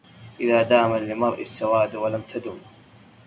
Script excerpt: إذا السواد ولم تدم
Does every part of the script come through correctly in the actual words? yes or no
no